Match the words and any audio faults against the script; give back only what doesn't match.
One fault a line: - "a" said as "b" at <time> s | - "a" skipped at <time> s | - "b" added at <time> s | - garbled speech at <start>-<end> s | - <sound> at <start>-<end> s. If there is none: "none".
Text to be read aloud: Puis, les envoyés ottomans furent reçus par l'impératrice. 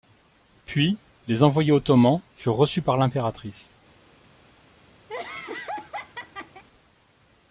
- laugh at 5.1-6.6 s